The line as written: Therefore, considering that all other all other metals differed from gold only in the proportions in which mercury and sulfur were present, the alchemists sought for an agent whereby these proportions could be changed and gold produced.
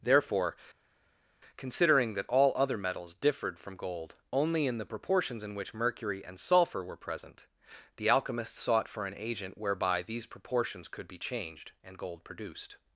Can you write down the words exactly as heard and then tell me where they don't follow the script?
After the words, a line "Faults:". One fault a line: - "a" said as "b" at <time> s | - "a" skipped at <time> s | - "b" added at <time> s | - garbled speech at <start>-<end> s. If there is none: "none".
Therefore, considering that all other metals differed from gold only in the proportions in which mercury and sulfur were present, the alchemists sought for an agent whereby these proportions could be changed and gold produced.
Faults:
- "all other" skipped at 2.8 s